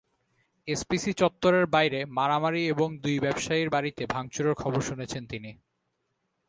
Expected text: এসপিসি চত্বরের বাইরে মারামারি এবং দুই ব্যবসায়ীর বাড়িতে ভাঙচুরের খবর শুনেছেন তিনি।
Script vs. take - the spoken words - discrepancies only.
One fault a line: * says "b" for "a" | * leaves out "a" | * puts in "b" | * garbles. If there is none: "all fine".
all fine